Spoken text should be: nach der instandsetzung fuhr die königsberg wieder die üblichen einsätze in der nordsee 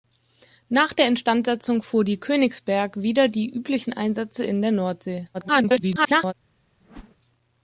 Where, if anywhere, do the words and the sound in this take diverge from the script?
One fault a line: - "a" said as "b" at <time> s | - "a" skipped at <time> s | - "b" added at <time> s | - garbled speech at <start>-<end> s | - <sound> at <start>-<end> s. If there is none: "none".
- garbled speech at 5.3-6.3 s
- whoosh at 6.8-7.2 s